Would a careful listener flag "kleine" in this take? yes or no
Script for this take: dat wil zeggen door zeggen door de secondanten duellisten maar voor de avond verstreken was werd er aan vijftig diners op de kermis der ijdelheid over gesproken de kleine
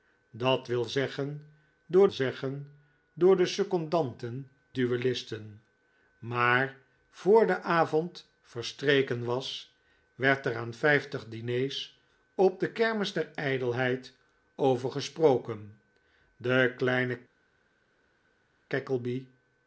no